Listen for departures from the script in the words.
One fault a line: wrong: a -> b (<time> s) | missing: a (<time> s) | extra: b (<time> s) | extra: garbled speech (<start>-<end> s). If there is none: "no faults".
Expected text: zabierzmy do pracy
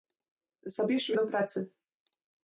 no faults